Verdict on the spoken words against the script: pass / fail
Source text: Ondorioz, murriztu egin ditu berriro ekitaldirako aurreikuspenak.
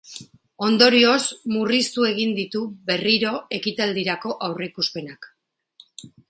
pass